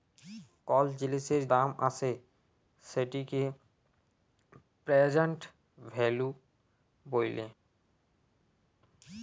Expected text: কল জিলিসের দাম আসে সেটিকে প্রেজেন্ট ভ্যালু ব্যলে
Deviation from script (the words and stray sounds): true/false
false